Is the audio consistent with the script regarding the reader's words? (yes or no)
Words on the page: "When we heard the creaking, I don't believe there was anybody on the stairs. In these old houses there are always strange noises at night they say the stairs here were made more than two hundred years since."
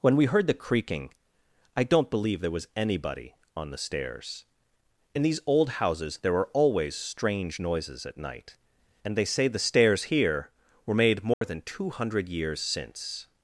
no